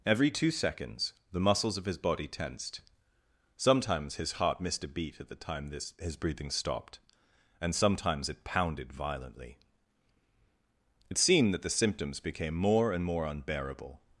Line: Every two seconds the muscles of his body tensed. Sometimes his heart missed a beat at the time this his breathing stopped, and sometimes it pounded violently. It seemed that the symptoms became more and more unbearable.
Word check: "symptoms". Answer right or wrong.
right